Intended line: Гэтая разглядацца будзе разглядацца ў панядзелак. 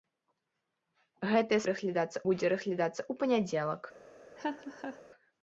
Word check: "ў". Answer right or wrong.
right